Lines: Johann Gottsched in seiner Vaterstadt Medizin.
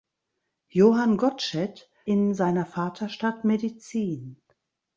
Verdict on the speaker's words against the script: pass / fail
pass